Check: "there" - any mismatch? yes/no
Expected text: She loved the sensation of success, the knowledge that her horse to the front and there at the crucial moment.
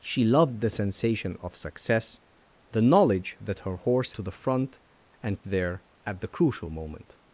no